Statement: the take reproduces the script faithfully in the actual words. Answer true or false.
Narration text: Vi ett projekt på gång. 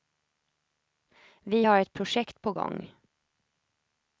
false